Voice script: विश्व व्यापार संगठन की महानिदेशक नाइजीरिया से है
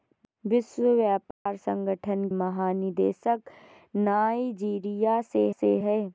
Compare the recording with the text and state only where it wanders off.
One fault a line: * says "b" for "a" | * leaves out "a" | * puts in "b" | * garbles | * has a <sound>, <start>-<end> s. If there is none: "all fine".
* has a dropout, 1.3-1.5 s
* leaves out "की"
* puts in "से"